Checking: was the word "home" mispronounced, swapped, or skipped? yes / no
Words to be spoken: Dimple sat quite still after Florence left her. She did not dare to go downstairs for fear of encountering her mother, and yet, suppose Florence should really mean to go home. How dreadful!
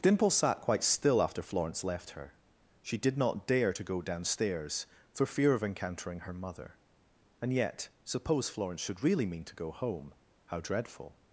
no